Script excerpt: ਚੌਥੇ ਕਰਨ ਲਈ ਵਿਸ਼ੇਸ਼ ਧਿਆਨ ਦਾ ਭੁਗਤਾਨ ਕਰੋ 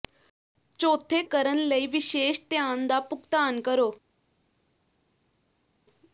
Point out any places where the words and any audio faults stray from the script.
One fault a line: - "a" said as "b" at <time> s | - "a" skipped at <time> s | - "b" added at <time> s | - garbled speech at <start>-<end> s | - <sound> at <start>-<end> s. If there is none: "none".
none